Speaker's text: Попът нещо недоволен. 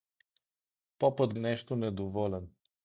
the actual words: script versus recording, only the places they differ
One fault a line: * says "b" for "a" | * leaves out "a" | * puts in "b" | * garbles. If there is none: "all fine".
all fine